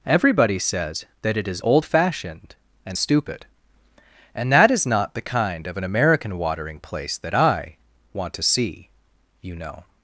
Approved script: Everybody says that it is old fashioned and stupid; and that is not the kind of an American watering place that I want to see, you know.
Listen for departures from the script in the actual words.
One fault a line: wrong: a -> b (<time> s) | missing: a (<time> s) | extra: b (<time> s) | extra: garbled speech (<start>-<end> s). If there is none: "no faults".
no faults